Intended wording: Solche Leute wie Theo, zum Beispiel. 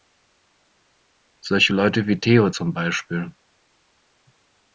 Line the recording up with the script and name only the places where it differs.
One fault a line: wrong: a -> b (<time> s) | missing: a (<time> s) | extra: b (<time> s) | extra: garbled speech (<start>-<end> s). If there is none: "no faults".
no faults